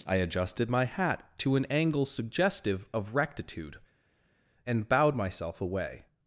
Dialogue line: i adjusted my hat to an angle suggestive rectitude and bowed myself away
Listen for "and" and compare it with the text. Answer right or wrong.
right